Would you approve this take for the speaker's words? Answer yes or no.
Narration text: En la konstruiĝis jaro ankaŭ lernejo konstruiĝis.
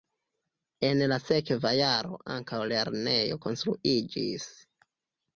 no